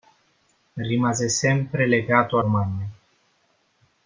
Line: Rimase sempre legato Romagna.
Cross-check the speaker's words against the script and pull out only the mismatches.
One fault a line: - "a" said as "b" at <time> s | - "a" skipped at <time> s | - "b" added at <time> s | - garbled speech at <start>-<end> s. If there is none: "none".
none